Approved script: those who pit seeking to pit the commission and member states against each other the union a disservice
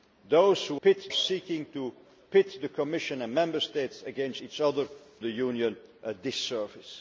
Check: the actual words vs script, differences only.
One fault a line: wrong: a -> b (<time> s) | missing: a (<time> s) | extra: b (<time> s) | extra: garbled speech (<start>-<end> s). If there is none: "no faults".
no faults